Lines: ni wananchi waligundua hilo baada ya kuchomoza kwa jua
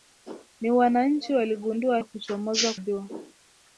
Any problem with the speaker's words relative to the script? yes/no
yes